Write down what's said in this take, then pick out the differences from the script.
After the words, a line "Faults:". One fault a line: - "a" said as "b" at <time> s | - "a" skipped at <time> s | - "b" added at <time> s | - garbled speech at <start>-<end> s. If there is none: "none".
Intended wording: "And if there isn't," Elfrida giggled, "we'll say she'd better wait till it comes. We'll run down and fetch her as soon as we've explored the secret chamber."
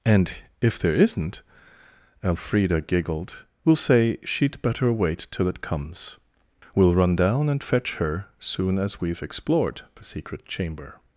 "And if there isn't," Elfrida giggled, "we'll say she'd better wait till it comes. We'll run down and fetch her soon as we've explored the secret chamber."
Faults:
- "as" skipped at 8.3 s